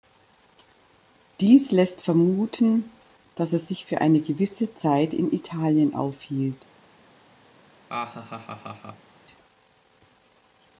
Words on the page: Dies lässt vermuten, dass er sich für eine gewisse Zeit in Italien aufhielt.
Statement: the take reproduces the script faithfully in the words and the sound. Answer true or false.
false